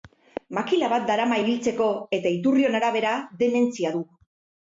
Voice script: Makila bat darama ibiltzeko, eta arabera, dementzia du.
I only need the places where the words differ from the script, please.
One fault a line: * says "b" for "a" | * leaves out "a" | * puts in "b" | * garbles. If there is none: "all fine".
* puts in "iturrion"